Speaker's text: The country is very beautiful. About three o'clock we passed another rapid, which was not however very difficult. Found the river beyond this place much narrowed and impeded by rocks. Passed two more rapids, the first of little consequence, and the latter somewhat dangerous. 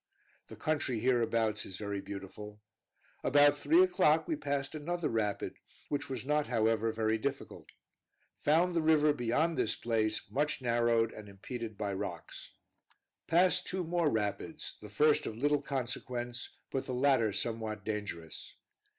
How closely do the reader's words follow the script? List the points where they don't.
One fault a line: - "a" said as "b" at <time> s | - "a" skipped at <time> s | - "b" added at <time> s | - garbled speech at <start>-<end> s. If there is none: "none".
- "hereabouts" added at 1.0 s
- "and" said as "but" at 16.7 s